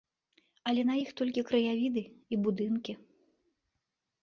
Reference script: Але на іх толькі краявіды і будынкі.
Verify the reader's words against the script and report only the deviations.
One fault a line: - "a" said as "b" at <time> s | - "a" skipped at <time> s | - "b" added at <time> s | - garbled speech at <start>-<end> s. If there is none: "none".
none